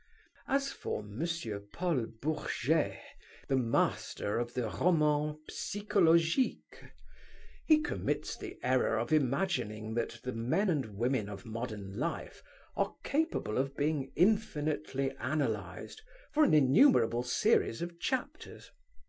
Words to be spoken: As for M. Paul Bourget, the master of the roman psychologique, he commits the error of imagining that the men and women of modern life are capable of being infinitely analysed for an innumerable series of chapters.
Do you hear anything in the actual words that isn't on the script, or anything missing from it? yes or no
no